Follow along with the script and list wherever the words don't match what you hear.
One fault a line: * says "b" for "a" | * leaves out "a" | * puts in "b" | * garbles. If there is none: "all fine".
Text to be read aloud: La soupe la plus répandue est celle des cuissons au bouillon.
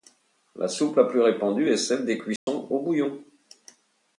all fine